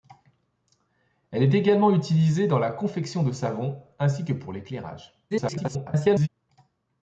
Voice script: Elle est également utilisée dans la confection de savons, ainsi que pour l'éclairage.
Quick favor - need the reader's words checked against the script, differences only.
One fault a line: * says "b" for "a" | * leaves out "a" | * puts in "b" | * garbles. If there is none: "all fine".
* garbles